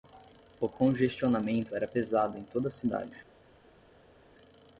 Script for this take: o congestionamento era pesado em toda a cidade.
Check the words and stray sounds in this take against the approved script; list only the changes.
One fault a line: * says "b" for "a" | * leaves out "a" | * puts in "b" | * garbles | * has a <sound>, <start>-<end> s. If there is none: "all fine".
all fine